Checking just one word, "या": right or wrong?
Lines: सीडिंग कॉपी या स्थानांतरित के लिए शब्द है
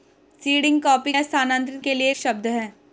right